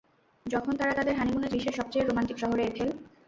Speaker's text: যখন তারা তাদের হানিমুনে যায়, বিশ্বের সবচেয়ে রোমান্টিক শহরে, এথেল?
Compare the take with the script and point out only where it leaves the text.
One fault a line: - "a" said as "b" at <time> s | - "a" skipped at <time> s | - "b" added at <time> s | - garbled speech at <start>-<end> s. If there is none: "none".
- "যায়" skipped at 1.5 s